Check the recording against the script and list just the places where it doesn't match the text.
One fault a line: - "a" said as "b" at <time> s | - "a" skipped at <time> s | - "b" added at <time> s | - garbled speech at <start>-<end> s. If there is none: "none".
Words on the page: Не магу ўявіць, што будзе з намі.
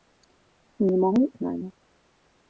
- "ўявіць што будзе" skipped at 1.2 s